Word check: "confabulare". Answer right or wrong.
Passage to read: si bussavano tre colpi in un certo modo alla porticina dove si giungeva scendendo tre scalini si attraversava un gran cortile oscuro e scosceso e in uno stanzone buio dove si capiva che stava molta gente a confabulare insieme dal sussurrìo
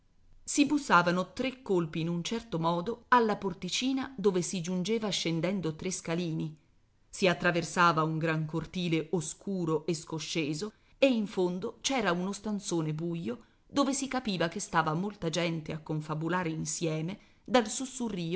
right